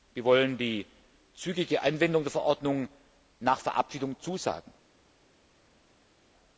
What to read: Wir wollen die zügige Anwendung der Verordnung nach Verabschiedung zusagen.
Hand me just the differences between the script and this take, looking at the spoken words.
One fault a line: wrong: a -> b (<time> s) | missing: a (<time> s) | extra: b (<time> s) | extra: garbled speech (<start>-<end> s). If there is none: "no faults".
no faults